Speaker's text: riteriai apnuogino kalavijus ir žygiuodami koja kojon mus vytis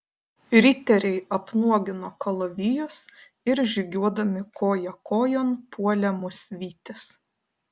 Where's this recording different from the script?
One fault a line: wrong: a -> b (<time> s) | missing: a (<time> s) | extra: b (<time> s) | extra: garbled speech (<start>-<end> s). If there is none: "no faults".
extra: puolė (5.8 s)